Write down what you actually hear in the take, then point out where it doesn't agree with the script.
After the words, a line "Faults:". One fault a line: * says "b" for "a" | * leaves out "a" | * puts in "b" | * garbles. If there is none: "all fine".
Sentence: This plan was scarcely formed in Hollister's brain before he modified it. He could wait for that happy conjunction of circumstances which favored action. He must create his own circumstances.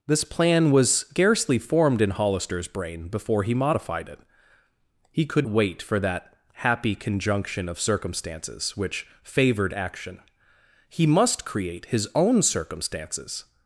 This plan was scarcely formed in Hollister's brain before he modified it. He could wait for that happy conjunction of circumstances which favored action. He must create his own circumstances.
Faults:
all fine